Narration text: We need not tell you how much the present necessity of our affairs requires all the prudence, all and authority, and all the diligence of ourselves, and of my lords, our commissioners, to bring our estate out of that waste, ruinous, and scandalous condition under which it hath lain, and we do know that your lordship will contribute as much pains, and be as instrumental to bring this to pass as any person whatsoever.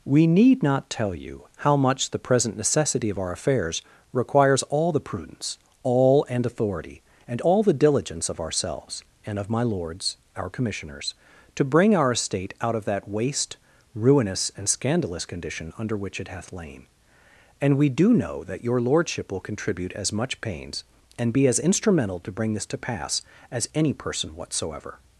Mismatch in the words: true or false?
false